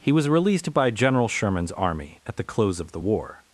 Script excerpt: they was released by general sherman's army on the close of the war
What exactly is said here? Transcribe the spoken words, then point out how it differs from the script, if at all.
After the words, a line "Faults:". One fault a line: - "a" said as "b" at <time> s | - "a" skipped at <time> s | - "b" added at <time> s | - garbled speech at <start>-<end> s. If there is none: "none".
he was released by general sherman's army at the close of the war
Faults:
- "they" said as "he" at 0.0 s
- "on" said as "at" at 2.2 s